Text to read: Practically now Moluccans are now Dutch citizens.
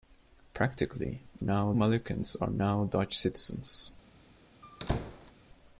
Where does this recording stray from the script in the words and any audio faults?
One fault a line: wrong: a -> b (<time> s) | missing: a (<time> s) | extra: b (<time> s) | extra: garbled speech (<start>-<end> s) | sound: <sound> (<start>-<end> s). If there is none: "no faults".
sound: squeak (4.6-5.3 s)